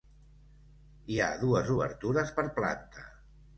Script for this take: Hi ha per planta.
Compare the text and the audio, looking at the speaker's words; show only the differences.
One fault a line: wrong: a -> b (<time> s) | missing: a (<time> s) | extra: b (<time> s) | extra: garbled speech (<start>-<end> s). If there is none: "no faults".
extra: dues obertures (1.4 s)